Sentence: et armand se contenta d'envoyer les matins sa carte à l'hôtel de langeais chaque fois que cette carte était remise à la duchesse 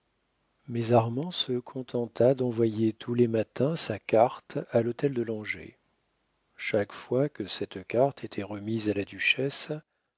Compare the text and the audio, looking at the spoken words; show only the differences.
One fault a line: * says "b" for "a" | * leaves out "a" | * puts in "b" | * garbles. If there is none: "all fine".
* says "mais" for "et"
* puts in "tous"